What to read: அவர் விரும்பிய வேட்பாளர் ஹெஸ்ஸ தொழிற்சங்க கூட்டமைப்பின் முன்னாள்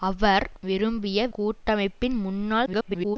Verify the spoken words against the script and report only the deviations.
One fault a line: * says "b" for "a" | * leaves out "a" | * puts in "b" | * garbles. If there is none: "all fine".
* leaves out "வேட்பாளர் ஹெஸ்ஸ தொழிற்சங்க"
* garbles